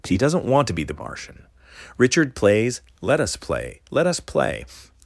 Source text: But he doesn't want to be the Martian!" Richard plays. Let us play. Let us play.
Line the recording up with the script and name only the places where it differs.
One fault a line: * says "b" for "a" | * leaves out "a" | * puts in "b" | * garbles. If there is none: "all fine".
* leaves out "But"